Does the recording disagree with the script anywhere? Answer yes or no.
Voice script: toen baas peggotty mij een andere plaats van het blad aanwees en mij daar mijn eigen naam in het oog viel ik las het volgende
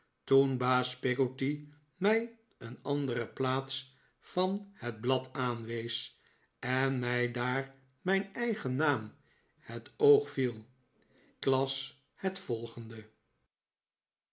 yes